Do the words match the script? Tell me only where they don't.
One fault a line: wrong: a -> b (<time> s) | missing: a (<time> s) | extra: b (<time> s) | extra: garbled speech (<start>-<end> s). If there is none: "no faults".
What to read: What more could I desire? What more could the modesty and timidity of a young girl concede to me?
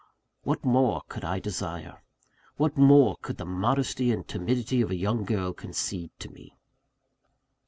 no faults